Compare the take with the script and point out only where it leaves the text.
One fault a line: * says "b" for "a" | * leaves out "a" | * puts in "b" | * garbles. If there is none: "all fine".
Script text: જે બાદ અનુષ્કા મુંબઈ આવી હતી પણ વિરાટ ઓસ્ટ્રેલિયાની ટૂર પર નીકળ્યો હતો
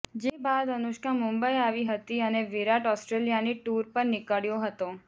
* says "અને" for "પણ"